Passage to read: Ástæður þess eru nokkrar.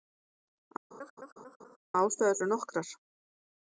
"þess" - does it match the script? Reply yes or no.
no